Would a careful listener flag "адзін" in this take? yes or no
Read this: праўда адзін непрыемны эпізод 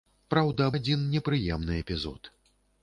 no